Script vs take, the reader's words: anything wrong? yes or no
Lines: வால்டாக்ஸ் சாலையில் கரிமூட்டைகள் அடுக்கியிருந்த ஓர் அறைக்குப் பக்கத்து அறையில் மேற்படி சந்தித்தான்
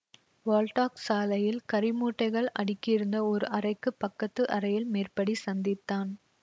no